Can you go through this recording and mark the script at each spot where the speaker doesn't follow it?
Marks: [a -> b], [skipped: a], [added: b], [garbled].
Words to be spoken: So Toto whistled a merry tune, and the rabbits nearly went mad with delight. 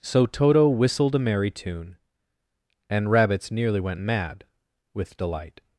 So Toto whistled a merry tune, and [skipped: the] rabbits nearly went mad with delight.